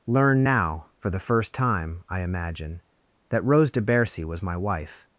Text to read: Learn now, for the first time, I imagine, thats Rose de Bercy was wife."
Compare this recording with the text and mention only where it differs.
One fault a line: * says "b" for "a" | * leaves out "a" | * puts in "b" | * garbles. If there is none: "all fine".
* says "that" for "thats"
* puts in "my"